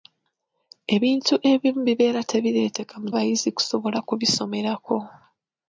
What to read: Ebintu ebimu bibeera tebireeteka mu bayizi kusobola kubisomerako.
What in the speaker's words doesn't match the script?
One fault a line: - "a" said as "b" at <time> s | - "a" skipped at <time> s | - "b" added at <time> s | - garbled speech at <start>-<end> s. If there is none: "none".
none